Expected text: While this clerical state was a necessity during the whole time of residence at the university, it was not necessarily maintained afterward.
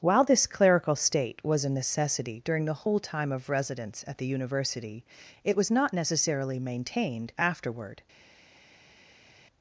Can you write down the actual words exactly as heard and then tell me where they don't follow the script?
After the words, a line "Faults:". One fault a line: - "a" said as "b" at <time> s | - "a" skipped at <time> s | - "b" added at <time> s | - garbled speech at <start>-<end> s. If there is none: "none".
While this clerical state was a necessity during the whole time of residence at the university, it was not necessarily maintained afterward.
Faults:
none